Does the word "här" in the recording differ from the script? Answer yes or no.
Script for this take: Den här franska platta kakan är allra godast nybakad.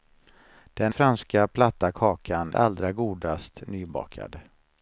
yes